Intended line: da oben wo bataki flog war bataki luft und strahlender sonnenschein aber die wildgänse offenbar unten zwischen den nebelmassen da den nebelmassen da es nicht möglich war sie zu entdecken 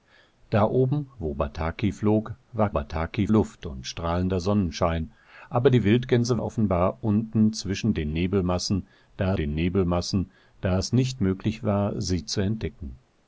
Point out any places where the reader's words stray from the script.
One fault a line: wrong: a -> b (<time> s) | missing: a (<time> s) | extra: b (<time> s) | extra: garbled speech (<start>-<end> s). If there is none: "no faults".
no faults